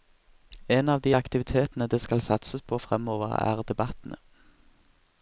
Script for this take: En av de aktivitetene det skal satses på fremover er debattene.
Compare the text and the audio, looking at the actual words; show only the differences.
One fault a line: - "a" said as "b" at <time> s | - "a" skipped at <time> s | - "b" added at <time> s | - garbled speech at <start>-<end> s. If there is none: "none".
none